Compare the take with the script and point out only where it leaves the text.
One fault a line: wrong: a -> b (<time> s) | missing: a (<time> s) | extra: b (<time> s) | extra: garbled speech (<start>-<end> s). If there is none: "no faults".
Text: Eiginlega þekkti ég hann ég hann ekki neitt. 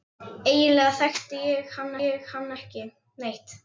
no faults